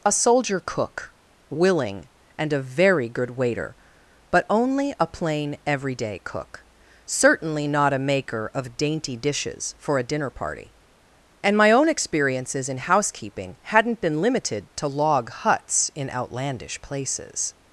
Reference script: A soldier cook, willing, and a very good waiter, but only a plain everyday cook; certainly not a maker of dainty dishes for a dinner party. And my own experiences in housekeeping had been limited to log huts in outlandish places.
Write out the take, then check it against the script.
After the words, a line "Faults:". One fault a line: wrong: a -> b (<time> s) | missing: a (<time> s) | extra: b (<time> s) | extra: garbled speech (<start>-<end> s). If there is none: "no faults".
A soldier cook, willing, and a very good waiter, but only a plain everyday cook; certainly not a maker of dainty dishes for a dinner party. And my own experiences in housekeeping hadn't been limited to log huts in outlandish places.
Faults:
wrong: had -> hadn't (13.6 s)